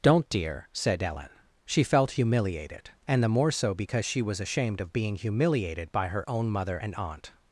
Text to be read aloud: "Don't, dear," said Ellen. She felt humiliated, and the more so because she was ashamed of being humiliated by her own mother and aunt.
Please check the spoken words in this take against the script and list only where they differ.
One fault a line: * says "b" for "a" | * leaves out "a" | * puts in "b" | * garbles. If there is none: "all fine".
all fine